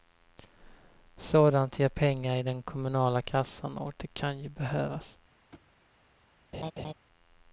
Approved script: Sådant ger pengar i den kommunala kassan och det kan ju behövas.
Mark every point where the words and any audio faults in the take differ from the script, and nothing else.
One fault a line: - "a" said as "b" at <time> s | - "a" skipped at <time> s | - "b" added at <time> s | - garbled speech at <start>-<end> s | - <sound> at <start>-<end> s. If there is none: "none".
- thud at 5.5-5.7 s
- laugh at 6.5-6.9 s